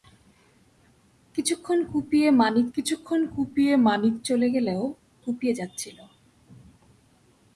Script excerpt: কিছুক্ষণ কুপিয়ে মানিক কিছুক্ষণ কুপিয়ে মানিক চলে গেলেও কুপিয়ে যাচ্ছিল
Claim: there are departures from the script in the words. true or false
false